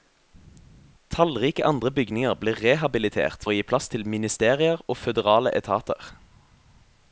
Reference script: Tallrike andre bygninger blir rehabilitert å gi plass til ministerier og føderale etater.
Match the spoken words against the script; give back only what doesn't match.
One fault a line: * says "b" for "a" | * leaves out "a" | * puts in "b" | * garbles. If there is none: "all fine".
all fine